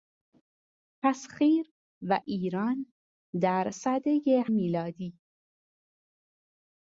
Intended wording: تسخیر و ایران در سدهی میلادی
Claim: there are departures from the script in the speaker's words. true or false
false